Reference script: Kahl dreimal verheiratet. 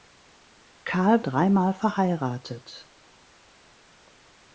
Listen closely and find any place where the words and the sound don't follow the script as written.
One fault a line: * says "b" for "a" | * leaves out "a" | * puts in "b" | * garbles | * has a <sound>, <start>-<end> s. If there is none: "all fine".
all fine